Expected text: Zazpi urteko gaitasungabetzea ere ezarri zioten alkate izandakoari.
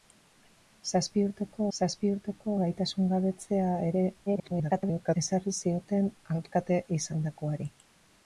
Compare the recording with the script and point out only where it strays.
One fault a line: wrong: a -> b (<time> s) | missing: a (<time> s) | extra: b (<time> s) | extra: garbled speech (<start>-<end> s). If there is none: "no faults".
extra: zazpi urteko (1.8 s)
extra: garbled speech (4.3-5.2 s)